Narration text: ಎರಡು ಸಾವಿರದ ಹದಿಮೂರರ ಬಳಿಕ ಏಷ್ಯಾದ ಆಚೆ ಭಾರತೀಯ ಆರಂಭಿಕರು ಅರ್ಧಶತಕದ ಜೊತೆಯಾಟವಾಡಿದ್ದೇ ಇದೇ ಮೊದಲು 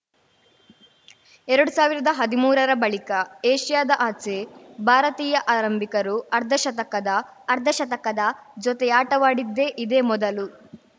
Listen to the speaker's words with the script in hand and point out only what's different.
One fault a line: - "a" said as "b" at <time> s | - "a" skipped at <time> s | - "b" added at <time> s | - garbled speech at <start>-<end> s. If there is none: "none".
- "ಅರ್ಧಶತಕದ" added at 7.5 s